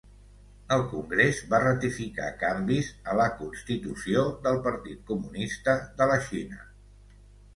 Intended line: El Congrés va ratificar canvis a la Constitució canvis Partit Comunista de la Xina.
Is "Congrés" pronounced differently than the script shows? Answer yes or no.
no